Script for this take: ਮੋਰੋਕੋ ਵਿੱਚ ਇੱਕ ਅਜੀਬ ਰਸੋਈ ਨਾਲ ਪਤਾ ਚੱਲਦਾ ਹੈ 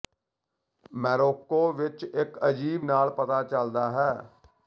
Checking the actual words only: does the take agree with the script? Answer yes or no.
no